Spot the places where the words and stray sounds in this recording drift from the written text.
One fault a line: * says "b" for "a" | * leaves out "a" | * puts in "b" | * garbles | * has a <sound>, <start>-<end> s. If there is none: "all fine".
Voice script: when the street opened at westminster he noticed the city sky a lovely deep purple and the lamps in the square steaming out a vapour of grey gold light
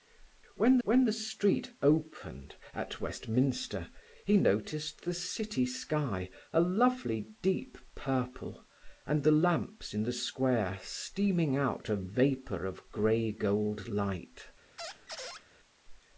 * puts in "when"
* has a squeak, 14.8-15.4 s